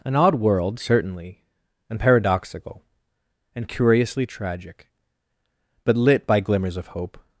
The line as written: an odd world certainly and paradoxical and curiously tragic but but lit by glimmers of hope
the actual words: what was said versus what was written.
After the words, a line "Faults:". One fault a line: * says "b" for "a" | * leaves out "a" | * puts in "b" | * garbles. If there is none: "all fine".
an odd world certainly and paradoxical and curiously tragic but lit by glimmers of hope
Faults:
* leaves out "but"